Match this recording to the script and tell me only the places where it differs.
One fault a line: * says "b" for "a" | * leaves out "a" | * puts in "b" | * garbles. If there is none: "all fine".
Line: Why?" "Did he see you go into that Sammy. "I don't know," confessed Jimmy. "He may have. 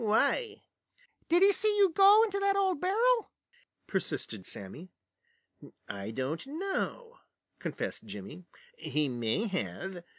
* puts in "old barrel persisted"